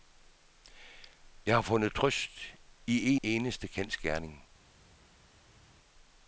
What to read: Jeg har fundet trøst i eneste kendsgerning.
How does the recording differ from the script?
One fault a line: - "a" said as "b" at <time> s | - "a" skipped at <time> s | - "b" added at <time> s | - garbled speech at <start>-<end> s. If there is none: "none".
none